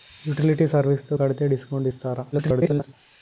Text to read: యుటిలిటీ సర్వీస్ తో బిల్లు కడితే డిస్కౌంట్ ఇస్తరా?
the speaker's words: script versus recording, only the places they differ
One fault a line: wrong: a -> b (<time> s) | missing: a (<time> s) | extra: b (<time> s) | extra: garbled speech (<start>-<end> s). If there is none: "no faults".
missing: బిల్లు (1.2 s)
extra: garbled speech (2.3-2.9 s)